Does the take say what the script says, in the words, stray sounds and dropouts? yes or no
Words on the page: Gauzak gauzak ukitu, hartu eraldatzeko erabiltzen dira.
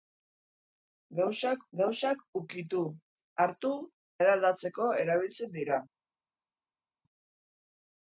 yes